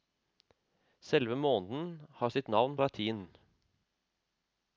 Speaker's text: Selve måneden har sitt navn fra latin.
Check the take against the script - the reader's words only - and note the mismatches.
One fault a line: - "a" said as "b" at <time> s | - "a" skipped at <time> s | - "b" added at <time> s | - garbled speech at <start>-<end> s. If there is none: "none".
- "fra" skipped at 2.8 s